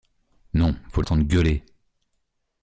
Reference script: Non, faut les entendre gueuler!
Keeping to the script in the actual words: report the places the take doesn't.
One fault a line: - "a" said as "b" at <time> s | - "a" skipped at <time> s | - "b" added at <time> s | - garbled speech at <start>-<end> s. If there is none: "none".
- "les" skipped at 1.0 s